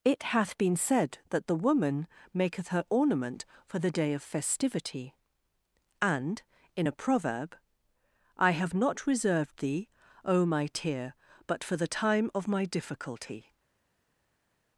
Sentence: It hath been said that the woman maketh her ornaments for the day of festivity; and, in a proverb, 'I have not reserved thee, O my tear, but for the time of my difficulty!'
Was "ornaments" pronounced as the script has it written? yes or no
no